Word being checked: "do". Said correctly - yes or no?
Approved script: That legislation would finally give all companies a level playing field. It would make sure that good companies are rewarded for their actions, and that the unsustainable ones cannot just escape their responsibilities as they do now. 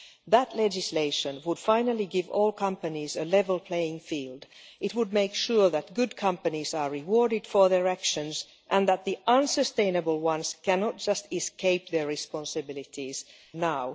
no